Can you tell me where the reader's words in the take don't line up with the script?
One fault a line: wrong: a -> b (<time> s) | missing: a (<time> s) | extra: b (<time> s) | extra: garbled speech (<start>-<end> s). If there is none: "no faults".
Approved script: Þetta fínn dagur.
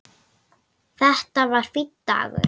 extra: var (1.5 s)